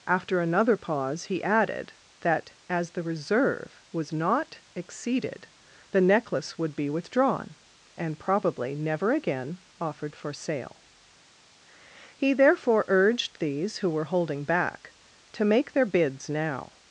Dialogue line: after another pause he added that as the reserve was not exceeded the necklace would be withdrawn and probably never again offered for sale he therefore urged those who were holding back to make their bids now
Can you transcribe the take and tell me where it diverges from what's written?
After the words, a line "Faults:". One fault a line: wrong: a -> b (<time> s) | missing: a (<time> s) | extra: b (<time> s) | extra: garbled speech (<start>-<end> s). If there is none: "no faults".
after another pause he added that as the reserve was not exceeded the necklace would be withdrawn and probably never again offered for sale he therefore urged these who were holding back to make their bids now
Faults:
wrong: those -> these (13.4 s)